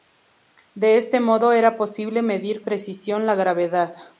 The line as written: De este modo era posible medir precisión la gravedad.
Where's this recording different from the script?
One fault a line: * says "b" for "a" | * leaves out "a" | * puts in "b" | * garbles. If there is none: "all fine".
all fine